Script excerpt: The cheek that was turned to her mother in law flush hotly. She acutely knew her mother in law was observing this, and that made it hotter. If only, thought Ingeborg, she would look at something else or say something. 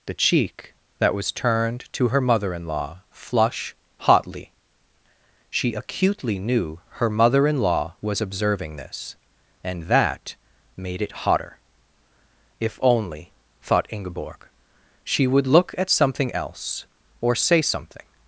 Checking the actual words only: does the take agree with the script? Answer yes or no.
yes